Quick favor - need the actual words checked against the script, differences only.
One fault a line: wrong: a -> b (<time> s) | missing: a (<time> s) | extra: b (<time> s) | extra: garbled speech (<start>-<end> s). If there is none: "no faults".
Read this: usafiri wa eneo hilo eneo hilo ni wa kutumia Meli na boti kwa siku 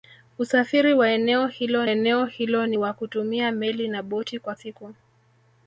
no faults